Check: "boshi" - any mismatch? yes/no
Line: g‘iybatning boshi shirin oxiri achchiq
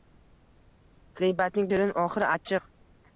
yes